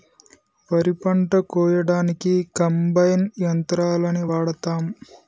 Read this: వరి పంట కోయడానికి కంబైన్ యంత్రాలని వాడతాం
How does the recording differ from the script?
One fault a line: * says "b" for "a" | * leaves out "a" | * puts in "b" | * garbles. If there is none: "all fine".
all fine